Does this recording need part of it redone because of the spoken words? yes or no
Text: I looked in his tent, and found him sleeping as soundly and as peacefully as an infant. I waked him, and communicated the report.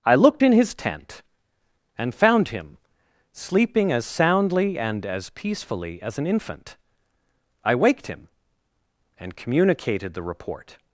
no